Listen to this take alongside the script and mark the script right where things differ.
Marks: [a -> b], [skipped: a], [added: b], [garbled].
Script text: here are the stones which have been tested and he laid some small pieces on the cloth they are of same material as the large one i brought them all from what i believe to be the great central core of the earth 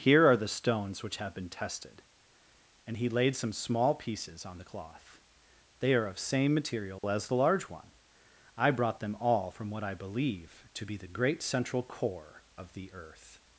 here are the stones which have been tested and he laid some small pieces on the cloth they are of same material as the large one i brought them all from what i believe to be the great central core of the earth